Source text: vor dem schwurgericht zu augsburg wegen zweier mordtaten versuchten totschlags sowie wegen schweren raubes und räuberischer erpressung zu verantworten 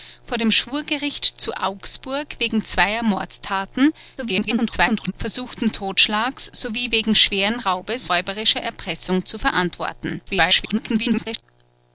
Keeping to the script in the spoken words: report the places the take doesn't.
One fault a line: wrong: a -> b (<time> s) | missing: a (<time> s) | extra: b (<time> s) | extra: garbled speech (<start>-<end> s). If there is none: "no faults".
extra: garbled speech (4.2-5.1 s)
missing: und (8.1 s)
extra: garbled speech (10.3-11.4 s)